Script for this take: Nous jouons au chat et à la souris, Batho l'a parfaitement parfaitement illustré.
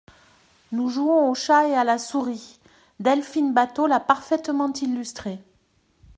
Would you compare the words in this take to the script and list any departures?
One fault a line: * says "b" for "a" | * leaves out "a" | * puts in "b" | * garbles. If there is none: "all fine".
* puts in "Delphine"
* leaves out "parfaitement"